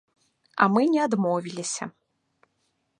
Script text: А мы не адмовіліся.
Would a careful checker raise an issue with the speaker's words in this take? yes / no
no